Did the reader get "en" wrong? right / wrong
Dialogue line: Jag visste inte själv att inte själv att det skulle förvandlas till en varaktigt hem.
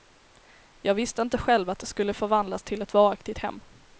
wrong